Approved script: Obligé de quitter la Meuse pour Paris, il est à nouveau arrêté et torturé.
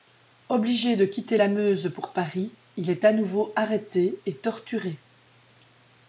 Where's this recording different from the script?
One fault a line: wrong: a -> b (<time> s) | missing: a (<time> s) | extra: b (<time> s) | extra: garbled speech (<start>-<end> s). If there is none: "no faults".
no faults